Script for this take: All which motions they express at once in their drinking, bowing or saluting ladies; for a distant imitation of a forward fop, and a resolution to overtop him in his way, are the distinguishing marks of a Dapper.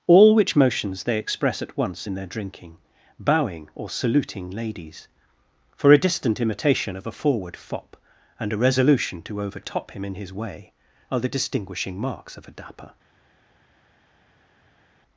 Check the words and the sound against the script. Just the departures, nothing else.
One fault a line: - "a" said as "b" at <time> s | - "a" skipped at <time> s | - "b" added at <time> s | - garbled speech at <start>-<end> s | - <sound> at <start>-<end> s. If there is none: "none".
none